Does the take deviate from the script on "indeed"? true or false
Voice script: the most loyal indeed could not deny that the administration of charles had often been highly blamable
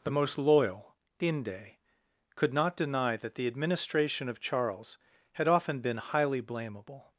true